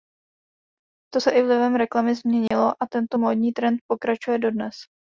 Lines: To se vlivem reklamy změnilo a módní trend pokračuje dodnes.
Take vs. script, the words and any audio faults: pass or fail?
fail